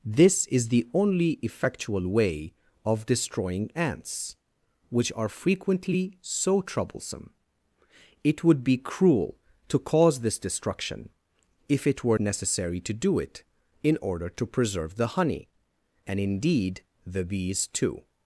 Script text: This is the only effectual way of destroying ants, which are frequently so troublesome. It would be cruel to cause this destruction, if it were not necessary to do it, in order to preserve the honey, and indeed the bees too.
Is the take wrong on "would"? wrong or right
right